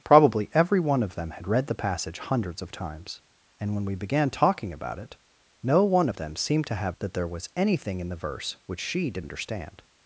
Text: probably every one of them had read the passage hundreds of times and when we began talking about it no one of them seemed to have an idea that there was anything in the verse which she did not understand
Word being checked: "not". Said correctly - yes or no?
no